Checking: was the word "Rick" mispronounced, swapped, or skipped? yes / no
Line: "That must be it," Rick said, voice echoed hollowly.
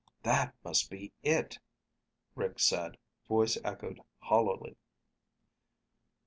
no